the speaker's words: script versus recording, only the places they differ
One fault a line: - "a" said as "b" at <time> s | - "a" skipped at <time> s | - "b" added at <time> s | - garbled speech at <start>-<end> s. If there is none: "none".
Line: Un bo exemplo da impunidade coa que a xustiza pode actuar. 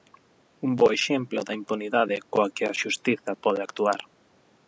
none